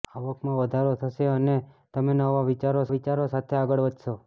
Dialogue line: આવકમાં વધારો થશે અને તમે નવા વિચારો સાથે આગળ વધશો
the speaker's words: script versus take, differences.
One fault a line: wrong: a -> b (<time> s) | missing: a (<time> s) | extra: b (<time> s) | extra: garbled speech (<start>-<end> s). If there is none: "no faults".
extra: વિચારો (2.9 s)